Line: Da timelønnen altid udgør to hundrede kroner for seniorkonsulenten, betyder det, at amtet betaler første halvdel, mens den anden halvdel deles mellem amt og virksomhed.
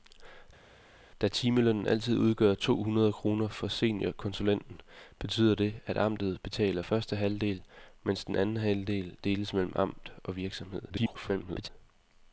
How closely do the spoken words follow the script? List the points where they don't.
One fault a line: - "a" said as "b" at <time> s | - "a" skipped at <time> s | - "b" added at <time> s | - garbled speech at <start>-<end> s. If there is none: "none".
- garbled speech at 10.9-11.7 s